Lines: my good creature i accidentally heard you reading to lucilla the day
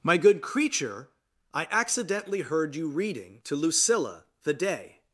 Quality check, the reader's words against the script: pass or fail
pass